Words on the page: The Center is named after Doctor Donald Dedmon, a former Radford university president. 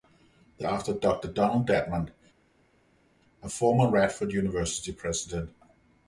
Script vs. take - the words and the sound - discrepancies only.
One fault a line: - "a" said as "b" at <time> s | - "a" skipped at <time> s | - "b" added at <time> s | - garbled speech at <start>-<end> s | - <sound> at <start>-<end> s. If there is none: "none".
- "Center is named" skipped at 0.7 s